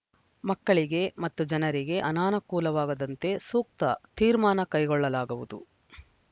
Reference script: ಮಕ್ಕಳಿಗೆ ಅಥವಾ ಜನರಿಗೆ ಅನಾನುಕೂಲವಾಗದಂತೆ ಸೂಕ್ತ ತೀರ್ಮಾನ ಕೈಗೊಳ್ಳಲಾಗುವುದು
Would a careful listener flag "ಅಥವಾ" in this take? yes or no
yes